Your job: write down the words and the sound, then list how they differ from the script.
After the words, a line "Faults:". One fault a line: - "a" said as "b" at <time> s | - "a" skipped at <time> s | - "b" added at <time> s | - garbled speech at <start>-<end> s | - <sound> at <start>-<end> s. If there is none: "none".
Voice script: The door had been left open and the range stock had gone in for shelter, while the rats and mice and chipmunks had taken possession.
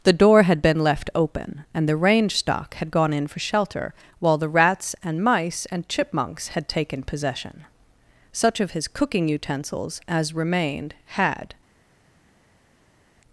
The door had been left open and the range stock had gone in for shelter, while the rats and mice and chipmunks had taken possession. Such of his cooking utensils as remained had
Faults:
- "Such of his cooking utensils as remained had" added at 8.3 s